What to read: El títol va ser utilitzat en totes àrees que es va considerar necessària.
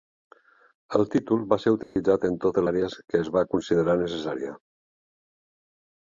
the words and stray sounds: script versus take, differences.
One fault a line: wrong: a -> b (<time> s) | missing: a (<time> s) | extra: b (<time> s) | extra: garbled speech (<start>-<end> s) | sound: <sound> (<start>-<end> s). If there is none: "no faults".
sound: dropout (1.8-2.0 s)